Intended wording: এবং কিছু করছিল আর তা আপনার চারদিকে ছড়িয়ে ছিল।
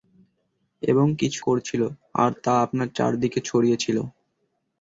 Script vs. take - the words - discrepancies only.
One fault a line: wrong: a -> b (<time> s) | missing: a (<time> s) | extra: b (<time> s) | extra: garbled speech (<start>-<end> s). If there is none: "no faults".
no faults